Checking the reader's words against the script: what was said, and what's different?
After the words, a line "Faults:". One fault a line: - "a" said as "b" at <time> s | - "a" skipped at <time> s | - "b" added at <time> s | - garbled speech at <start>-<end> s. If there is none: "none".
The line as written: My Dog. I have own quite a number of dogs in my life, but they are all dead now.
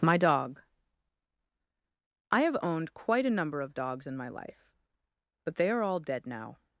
My Dog. I have owned quite a number of dogs in my life, but they are all dead now.
Faults:
- "own" said as "owned" at 2.6 s